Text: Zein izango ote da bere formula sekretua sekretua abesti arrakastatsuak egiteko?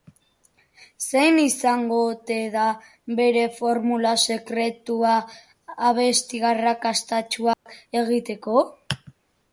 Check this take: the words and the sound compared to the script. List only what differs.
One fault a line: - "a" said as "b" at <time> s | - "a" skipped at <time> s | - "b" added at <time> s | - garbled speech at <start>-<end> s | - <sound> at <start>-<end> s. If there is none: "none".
- "sekretua" skipped at 5.1 s
- dropout at 7.5-7.7 s